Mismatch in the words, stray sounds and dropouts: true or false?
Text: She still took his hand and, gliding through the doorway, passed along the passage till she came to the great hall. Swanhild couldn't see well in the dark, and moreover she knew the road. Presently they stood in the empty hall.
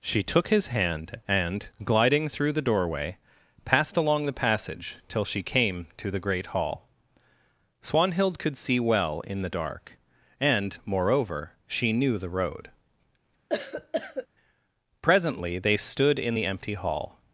true